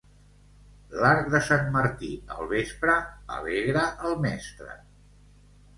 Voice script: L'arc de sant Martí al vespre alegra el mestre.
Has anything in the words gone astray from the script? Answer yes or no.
no